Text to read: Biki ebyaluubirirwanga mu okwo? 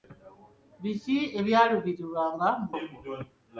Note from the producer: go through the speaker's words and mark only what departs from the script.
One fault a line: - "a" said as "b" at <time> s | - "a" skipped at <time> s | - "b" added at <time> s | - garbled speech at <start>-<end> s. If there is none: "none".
none